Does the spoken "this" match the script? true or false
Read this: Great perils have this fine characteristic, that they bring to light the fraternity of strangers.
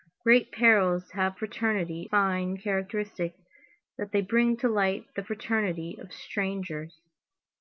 false